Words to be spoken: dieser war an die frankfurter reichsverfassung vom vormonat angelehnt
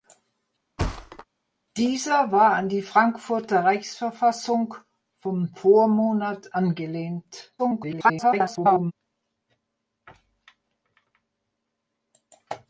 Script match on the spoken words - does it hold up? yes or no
no